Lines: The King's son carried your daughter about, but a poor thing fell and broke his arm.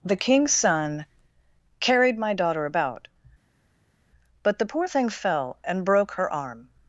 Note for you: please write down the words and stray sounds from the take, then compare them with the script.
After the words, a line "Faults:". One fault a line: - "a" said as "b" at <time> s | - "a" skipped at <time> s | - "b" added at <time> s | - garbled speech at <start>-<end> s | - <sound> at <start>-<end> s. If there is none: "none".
The King's son carried my daughter about, but the poor thing fell and broke her arm.
Faults:
- "your" said as "my" at 2.2 s
- "a" said as "the" at 4.6 s
- "his" said as "her" at 6.1 s